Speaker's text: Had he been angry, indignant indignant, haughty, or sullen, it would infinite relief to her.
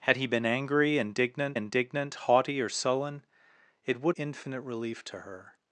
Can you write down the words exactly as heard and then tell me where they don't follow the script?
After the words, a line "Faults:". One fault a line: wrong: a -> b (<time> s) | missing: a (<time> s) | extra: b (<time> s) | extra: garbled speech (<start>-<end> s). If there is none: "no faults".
Had he been angry, indignant indignant, haughty, or sullen, it would infinite relief to her.
Faults:
no faults